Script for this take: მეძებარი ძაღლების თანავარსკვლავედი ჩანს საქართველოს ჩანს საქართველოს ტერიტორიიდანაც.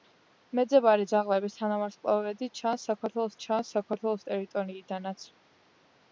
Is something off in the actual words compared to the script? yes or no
no